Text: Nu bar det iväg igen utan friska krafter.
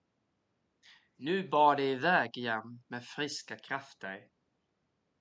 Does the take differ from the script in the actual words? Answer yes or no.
yes